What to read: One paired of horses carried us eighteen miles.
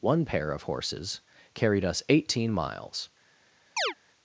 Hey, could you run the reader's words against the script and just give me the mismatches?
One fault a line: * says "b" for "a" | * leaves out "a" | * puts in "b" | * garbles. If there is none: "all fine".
* says "pair" for "paired"